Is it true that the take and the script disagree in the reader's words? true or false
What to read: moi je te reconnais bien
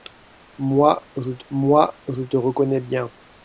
true